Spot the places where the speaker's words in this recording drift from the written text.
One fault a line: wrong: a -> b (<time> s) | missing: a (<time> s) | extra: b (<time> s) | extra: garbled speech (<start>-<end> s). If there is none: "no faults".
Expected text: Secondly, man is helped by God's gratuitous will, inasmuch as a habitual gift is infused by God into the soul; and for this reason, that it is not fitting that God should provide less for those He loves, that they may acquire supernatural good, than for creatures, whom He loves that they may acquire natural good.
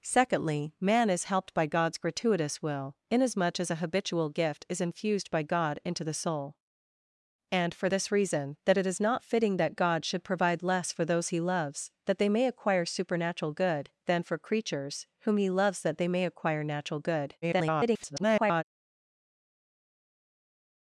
extra: garbled speech (17.4-18.6 s)